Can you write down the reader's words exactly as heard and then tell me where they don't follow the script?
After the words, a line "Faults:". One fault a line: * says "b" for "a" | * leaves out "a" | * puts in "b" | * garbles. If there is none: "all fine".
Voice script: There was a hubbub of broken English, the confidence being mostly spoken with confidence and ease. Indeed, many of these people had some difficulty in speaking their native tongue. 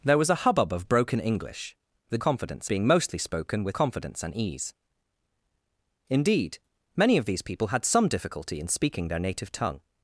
There was a hubbub of broken English, the confidence being mostly spoken with confidence and ease. Indeed, many of these people had some difficulty in speaking their native tongue.
Faults:
all fine